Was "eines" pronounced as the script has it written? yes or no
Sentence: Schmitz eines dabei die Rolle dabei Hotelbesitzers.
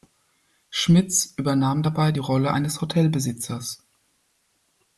no